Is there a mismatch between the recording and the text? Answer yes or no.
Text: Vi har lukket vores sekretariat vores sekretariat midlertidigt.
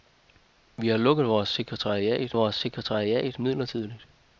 no